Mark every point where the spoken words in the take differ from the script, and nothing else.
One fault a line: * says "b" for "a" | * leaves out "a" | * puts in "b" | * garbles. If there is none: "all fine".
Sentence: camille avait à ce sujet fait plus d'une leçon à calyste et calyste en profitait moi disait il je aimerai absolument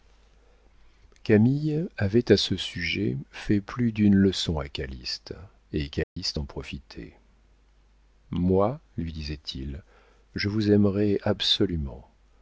* puts in "lui"
* puts in "vous"